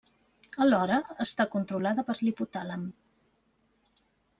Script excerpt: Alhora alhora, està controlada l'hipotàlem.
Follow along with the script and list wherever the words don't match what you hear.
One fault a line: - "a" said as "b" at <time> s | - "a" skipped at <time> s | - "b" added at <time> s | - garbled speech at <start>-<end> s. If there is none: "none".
- "alhora" skipped at 1.0 s
- "per" added at 2.1 s